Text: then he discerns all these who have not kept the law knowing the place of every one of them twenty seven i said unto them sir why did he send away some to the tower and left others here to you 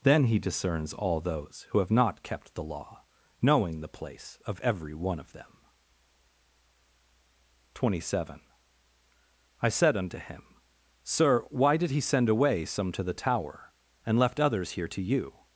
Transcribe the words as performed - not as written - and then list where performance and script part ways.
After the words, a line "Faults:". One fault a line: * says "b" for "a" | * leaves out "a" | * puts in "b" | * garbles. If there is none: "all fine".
then he discerns all those who have not kept the law knowing the place of every one of them twenty seven i said unto him sir why did he send away some to the tower and left others here to you
Faults:
* says "those" for "these"
* says "him" for "them"